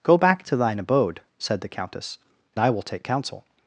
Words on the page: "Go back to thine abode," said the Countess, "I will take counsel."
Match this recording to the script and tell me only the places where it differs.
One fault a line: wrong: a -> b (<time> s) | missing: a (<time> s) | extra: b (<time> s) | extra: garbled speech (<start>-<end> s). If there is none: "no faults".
no faults